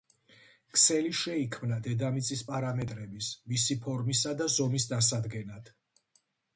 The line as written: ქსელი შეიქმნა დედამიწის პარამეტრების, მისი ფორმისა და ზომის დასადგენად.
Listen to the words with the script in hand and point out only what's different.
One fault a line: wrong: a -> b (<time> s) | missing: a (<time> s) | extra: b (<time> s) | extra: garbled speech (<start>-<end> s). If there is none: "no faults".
no faults